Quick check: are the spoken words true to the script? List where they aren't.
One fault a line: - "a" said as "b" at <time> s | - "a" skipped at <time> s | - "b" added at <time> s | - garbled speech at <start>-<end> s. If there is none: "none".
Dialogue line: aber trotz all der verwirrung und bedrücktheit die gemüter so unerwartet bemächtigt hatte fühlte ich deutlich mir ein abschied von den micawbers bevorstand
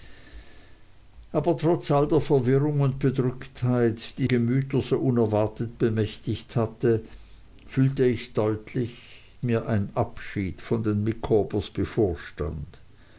none